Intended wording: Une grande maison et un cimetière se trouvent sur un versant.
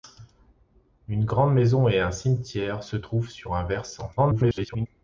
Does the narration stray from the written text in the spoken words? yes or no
yes